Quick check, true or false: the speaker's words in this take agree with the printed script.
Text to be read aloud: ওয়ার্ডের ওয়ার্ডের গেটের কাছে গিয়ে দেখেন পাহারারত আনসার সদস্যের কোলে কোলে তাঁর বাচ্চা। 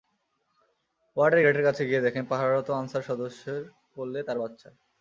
false